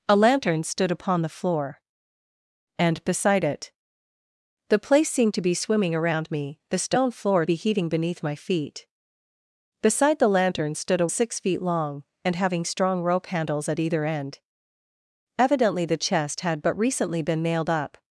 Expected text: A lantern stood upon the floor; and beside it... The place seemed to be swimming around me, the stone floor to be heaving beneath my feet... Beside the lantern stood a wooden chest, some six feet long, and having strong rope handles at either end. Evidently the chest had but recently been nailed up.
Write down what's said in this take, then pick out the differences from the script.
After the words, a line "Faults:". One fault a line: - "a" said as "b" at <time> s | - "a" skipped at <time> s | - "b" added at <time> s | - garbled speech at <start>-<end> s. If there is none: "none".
A lantern stood upon the floor; and beside it... The place seemed to be swimming around me, the stone floor be heaving beneath my feet... Beside the lantern stood a six feet long, and having strong rope handles at either end. Evidently the chest had but recently been nailed up.
Faults:
- "to" skipped at 7.5 s
- "wooden chest some" skipped at 11.1 s